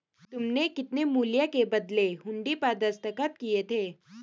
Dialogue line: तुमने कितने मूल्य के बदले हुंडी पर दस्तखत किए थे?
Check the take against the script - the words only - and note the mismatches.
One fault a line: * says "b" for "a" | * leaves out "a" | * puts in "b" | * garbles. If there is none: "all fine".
all fine